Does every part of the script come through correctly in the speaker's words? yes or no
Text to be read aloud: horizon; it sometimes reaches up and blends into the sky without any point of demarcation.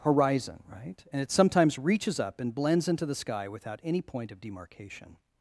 no